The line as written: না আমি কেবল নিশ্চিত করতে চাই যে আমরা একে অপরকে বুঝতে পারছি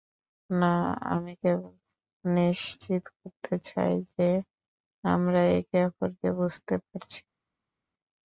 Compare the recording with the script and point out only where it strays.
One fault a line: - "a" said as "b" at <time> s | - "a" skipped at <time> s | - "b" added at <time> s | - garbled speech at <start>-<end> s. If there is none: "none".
none